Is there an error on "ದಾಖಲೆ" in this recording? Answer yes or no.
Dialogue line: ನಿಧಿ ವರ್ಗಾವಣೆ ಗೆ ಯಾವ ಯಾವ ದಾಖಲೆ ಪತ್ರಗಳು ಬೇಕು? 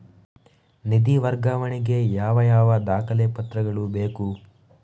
no